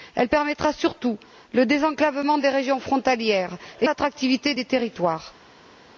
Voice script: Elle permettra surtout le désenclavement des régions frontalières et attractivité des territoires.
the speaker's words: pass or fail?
pass